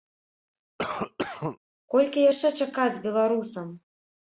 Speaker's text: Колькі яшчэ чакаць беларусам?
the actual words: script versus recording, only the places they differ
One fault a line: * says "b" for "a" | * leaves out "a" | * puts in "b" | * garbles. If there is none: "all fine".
all fine